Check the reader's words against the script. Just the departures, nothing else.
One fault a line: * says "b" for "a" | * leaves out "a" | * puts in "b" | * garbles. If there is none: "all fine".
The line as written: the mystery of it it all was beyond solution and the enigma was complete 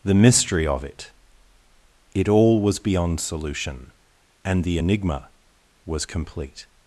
all fine